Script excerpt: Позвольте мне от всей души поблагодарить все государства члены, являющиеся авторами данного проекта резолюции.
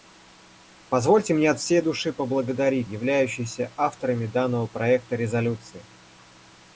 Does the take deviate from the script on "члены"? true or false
true